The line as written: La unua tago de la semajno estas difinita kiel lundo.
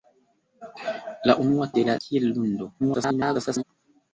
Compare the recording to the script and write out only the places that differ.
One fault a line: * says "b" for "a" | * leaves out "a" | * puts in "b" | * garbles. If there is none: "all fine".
* leaves out "tago"
* leaves out "semajno estas difinita"
* garbles